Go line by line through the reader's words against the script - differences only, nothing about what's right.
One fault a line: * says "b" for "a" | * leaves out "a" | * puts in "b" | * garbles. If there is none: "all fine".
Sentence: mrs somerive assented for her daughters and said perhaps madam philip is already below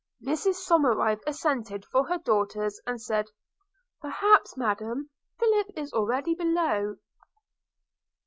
all fine